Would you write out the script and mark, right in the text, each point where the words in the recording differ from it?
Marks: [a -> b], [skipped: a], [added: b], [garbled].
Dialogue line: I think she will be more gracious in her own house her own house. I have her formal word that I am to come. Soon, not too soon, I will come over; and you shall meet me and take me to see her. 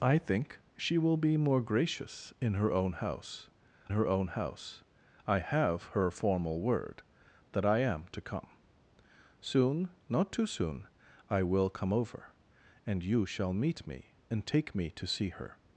I think she will be more gracious in her own house her own house. I have her formal word that I am to come. Soon, not too soon, I will come over; and you shall meet me and take me to see her.